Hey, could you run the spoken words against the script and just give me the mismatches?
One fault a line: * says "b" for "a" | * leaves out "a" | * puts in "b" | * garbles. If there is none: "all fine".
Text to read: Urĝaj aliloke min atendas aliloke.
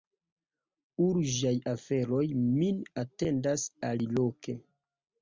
* says "aferoj" for "aliloke"